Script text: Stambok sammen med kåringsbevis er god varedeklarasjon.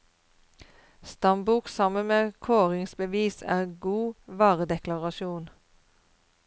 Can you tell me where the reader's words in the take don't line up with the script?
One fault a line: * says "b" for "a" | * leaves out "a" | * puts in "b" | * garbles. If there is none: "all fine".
all fine